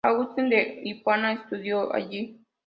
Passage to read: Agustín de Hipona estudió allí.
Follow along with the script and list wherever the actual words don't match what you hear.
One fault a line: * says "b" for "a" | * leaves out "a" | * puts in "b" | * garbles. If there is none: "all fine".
all fine